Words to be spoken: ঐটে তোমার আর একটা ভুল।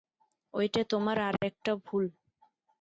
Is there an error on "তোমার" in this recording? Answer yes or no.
no